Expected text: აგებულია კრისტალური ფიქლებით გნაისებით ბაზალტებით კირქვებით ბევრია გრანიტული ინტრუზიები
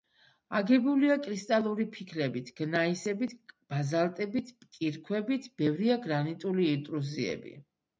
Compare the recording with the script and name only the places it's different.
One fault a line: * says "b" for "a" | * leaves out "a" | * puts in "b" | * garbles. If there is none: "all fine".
all fine